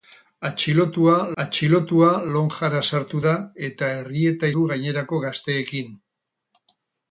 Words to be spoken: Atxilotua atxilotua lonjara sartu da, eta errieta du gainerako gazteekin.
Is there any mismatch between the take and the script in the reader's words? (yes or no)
no